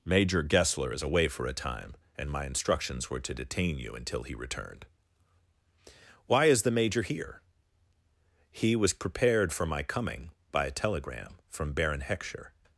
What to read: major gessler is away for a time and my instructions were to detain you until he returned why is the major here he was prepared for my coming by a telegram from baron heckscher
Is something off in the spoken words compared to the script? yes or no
no